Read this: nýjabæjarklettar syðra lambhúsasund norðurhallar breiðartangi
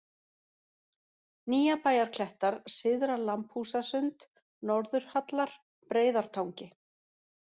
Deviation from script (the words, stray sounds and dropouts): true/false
false